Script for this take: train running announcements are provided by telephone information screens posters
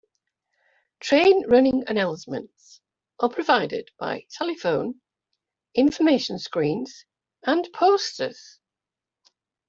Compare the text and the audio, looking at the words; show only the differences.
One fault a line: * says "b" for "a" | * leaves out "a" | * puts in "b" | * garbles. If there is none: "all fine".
* puts in "and"